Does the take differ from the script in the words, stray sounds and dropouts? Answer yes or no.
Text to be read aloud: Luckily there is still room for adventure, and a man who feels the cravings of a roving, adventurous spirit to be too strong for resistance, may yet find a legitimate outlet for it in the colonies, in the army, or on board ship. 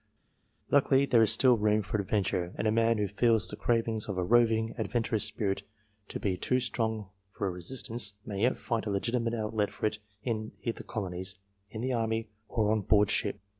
no